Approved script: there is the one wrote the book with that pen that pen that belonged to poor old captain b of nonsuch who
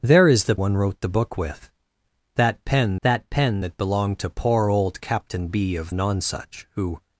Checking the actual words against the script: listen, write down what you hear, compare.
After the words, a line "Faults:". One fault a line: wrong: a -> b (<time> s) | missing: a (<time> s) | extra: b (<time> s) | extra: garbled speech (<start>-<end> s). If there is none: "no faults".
there is the one wrote the book with that pen that pen that belonged to poor old captain b of nonsuch who
Faults:
no faults